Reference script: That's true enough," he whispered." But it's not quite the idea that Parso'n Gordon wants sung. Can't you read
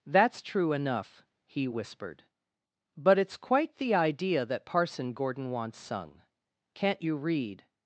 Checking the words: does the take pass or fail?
fail